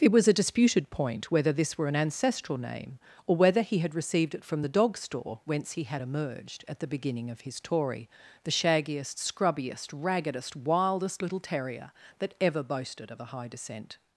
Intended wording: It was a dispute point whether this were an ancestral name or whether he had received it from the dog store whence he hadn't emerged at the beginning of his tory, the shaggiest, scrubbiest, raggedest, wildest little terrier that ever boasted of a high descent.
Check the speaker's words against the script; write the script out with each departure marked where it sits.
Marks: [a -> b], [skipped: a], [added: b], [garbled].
It was a [dispute -> disputed] point whether this were an ancestral name or whether he had received it from the dog store whence he [hadn't -> had] emerged at the beginning of his tory, the shaggiest, scrubbiest, raggedest, wildest little terrier that ever boasted of a high descent.